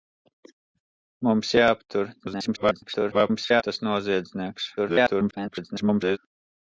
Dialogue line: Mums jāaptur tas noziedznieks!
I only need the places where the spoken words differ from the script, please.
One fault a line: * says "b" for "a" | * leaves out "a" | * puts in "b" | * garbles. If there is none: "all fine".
* garbles
* garbles